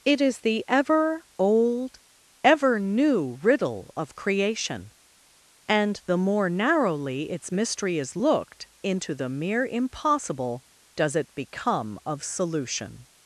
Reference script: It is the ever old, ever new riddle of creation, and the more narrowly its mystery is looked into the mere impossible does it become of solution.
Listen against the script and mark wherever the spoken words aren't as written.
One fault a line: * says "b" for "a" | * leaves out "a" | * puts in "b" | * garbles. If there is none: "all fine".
all fine